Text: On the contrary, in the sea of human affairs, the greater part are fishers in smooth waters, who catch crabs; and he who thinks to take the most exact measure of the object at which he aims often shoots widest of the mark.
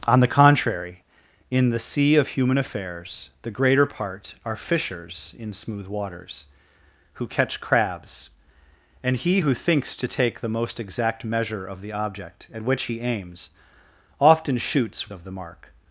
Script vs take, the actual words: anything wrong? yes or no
yes